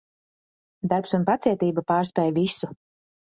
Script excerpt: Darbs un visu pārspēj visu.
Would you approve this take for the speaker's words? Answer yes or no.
no